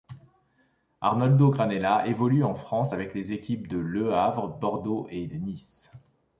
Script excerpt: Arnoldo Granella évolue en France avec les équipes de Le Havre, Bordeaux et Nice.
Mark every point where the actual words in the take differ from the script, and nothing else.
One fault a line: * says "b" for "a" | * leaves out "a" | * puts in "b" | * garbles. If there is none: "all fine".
all fine